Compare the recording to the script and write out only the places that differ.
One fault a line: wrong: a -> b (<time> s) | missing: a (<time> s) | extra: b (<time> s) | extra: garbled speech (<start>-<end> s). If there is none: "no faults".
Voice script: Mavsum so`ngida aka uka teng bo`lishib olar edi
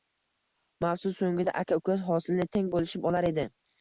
extra: hosilni (2.1 s)